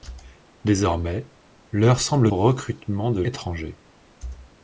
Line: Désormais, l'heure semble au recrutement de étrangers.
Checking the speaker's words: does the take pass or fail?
pass